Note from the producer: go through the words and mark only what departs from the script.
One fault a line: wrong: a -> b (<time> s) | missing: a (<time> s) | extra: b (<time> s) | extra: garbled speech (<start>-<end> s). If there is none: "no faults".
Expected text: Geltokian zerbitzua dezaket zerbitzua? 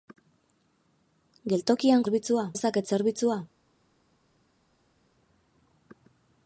no faults